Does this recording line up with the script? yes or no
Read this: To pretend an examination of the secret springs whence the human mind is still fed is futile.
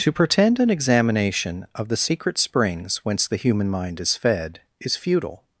no